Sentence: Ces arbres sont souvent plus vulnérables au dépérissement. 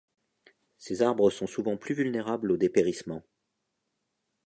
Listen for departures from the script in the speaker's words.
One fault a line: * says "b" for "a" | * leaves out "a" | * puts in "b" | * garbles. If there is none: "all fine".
all fine